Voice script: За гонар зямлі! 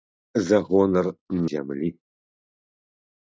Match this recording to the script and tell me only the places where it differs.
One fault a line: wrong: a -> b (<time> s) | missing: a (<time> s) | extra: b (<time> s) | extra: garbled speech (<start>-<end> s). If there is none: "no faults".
no faults